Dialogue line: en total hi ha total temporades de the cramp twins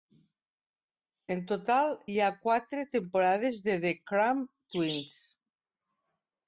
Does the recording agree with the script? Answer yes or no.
no